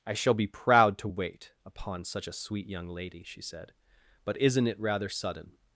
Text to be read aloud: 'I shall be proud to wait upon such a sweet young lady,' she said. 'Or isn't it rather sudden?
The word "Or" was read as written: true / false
false